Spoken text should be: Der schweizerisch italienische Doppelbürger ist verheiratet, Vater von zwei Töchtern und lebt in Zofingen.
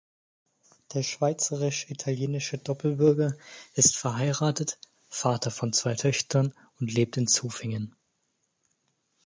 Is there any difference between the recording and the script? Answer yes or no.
no